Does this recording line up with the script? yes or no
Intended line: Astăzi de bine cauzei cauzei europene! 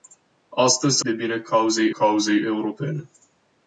yes